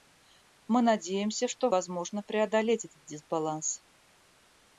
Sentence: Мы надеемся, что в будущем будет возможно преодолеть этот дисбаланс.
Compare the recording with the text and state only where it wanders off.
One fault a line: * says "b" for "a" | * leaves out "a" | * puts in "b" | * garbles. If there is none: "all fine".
* leaves out "в будущем будет"